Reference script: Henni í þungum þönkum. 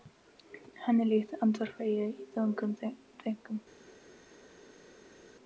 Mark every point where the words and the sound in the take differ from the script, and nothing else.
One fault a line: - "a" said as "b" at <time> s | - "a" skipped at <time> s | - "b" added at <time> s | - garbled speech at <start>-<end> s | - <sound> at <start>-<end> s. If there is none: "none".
- "líkt andvarpa ég" added at 1.1 s